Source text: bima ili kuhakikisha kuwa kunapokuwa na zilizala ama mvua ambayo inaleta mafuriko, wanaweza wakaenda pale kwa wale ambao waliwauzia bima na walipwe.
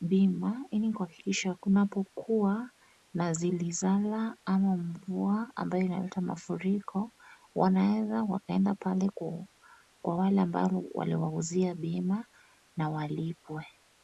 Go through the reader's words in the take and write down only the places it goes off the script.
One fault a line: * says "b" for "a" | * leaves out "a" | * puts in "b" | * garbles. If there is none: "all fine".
* leaves out "kuwa"